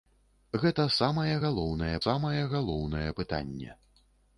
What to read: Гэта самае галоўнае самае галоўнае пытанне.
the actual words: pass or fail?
pass